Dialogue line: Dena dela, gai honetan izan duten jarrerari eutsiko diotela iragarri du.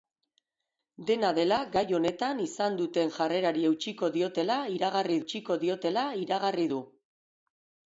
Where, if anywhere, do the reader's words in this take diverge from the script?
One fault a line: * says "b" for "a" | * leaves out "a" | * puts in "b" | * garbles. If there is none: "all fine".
* puts in "eutsiko diotela iragarri"